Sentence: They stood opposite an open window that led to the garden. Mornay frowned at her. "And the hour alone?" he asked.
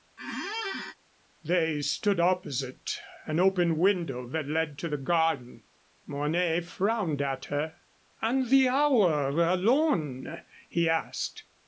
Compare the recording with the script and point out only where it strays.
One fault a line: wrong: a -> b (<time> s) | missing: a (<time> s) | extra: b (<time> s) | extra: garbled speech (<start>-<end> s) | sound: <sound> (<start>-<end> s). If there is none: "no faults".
sound: squeak (0.2-1.0 s)